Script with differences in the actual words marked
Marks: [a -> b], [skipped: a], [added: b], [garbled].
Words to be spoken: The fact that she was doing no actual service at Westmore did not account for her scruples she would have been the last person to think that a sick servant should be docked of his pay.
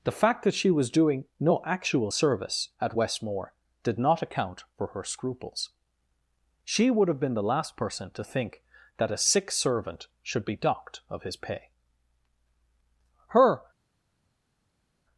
The fact that she was doing no actual service at Westmore did not account for her scruples she would have been the last person to think that a sick servant should be docked of his pay. [added: Her]